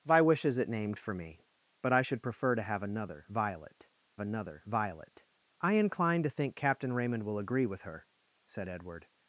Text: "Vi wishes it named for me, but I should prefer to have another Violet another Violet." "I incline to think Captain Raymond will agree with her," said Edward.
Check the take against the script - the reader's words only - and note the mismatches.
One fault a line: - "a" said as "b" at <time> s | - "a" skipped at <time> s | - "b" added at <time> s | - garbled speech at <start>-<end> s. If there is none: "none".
none